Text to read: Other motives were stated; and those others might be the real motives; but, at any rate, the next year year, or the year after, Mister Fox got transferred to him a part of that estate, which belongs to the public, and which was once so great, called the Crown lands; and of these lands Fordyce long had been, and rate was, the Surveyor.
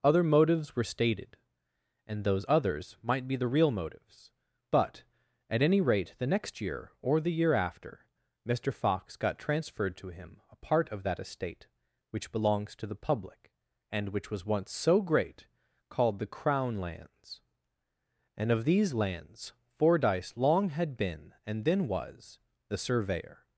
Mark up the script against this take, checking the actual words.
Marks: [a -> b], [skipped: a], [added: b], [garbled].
Other motives were stated; and those others might be the real motives; but, at any rate, the next year [skipped: year,] or the year after, Mister Fox got transferred to him a part of that estate, which belongs to the public, and which was once so great, called the Crown lands; and of these lands Fordyce long had been, and [rate -> then] was, the Surveyor.